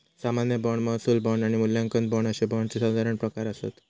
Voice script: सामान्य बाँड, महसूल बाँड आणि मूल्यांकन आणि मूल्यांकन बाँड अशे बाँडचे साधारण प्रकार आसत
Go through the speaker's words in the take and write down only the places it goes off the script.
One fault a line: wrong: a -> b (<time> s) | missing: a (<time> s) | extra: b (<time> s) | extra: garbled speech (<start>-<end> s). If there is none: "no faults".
missing: आणि मूल्यांकन (2.1 s)